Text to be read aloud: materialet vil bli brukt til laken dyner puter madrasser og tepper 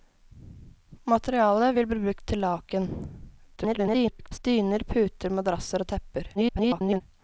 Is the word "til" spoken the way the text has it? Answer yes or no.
yes